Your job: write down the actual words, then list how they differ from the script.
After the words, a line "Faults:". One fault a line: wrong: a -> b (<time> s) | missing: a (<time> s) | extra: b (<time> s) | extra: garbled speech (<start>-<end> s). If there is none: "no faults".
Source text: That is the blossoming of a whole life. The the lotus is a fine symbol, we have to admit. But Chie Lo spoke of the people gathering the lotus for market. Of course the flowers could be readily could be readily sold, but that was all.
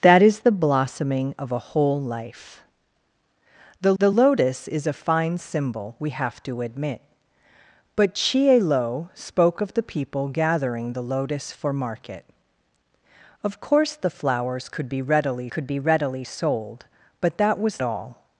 That is the blossoming of a whole life. The the lotus is a fine symbol, we have to admit. But Chie Lo spoke of the people gathering the lotus for market. Of course the flowers could be readily could be readily sold, but that was all.
Faults:
no faults